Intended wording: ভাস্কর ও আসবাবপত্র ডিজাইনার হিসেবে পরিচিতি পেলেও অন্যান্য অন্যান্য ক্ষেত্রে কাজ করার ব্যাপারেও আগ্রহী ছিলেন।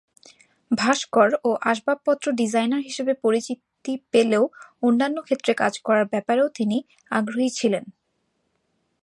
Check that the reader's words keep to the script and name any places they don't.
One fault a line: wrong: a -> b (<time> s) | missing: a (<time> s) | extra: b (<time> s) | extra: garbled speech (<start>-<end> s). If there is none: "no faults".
missing: অন্যান্য (5.2 s)
extra: তিনি (6.5 s)